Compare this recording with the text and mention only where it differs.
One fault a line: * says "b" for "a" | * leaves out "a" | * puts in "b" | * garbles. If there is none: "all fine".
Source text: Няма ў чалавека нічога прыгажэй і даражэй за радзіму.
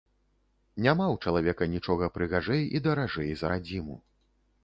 all fine